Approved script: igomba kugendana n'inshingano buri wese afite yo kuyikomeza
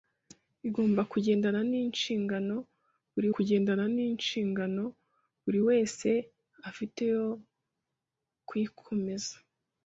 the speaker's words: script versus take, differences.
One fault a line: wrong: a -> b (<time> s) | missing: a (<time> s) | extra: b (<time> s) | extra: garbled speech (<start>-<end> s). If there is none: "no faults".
extra: kugendana n'inshingano buri (3.3 s)